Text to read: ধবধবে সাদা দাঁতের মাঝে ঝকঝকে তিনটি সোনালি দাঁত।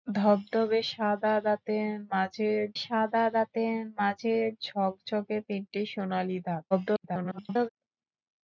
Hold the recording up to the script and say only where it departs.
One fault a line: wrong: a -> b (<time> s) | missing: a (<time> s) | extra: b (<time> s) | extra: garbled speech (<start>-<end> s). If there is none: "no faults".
extra: সাদা দাঁতের মাঝে (2.8 s)
extra: garbled speech (6.7-7.7 s)